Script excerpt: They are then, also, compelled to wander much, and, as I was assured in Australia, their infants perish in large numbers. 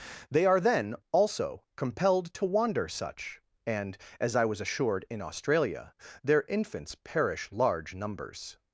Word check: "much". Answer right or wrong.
wrong